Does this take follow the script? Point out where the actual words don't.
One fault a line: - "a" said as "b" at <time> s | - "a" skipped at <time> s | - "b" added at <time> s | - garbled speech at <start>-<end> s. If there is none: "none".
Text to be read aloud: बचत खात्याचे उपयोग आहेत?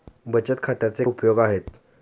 none